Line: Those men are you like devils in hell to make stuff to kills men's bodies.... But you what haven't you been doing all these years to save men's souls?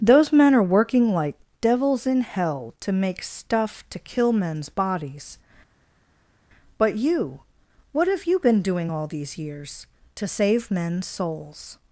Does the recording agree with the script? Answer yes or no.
no